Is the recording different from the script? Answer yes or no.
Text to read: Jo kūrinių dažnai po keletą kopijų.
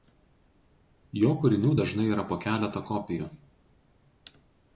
yes